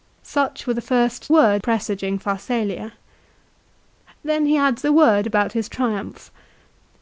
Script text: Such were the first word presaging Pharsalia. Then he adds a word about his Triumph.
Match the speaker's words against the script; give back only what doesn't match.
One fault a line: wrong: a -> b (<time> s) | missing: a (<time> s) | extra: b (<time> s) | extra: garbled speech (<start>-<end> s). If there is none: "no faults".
no faults